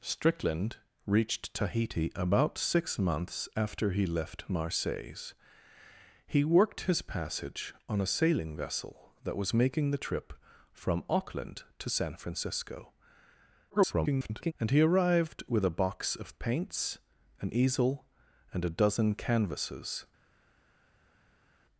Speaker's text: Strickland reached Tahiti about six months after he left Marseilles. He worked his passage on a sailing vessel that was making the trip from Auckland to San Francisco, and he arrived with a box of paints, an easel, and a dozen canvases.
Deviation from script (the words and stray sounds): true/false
true